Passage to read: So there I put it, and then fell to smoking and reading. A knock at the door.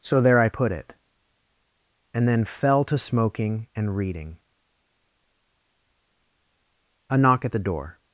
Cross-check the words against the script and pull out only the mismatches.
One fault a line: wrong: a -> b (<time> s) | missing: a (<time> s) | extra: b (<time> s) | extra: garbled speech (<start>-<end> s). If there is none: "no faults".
no faults